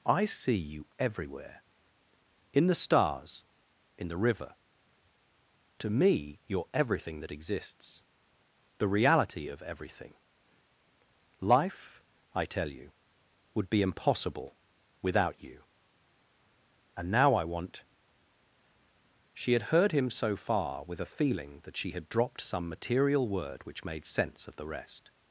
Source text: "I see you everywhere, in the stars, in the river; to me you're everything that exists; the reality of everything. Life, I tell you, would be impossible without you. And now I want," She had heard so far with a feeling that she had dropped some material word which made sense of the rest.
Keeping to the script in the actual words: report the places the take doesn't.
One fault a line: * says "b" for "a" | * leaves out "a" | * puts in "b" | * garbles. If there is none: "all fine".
* puts in "him"